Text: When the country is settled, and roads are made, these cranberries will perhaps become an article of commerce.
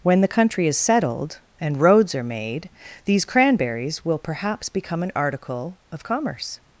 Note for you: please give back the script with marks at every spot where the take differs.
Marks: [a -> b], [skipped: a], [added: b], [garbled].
When the country is settled, and roads are made, these cranberries will perhaps become an article of commerce.